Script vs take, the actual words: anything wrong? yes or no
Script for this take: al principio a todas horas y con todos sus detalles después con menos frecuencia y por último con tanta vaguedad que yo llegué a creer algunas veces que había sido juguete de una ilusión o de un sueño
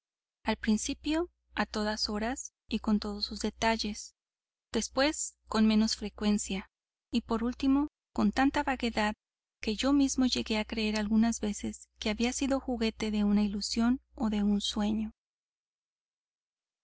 yes